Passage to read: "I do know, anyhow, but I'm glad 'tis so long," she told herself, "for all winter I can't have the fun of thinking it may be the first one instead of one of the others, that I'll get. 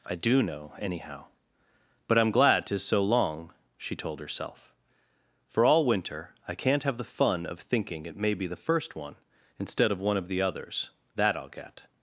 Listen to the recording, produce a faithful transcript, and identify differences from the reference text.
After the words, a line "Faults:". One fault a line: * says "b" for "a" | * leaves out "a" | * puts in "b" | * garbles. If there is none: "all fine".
"I do know, anyhow, but I'm glad 'tis so long," she told herself, "for all winter I can't have the fun of thinking it may be the first one instead of one of the others, that I'll get.
Faults:
all fine